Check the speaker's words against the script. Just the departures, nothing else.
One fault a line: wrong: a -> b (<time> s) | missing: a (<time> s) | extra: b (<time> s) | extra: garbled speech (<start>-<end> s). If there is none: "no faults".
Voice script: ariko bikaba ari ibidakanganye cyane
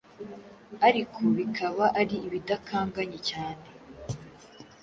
no faults